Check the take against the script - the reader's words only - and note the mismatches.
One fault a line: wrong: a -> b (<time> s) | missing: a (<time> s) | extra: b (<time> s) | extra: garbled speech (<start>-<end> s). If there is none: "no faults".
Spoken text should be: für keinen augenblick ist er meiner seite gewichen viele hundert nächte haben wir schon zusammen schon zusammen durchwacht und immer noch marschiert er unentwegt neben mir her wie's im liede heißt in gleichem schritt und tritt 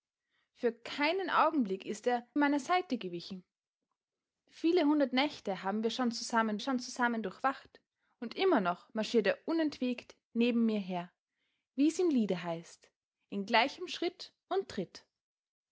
no faults